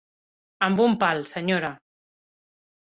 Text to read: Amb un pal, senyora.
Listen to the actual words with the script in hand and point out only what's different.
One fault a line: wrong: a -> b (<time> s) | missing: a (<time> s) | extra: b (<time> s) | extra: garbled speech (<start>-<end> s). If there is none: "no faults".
no faults